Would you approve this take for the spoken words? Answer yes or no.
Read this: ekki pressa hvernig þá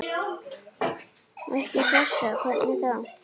yes